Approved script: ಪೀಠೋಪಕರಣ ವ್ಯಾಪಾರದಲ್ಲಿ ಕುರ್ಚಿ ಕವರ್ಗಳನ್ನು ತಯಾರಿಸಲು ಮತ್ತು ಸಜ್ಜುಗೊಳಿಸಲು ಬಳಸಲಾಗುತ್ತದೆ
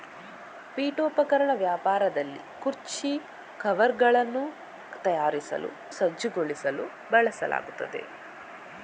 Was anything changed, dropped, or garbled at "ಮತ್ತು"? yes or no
yes